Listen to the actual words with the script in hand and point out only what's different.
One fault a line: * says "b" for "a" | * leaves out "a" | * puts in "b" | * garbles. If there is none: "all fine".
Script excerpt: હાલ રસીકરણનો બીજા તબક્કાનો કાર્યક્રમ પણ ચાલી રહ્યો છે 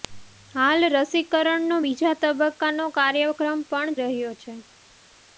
* leaves out "ચાલી"